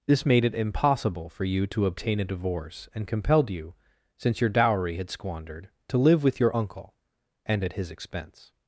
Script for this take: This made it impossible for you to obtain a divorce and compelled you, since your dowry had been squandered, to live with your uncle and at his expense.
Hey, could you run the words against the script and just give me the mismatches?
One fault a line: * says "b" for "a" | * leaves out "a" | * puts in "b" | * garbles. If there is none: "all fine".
* leaves out "been"